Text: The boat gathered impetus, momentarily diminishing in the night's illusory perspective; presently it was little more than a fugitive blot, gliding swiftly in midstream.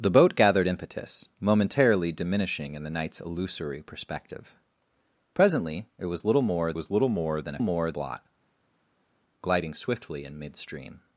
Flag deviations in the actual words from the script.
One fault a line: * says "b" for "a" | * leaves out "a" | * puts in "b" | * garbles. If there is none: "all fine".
* puts in "was little more"
* says "more" for "fugitive"